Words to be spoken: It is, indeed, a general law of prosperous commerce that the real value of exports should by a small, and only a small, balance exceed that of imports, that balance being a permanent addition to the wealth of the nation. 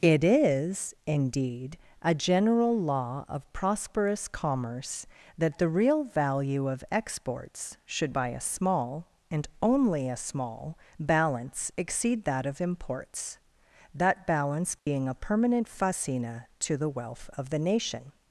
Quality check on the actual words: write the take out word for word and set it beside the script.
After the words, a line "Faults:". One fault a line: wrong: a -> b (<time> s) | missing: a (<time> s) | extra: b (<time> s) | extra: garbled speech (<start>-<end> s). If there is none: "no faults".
It is, indeed, a general law of prosperous commerce that the real value of exports should by a small, and only a small, balance exceed that of imports, that balance being a permanent fascina to the wealth of the nation.
Faults:
wrong: addition -> fascina (15.7 s)